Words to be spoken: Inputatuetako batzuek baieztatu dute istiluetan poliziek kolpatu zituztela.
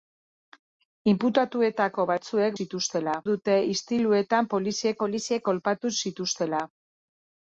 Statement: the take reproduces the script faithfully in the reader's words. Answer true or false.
false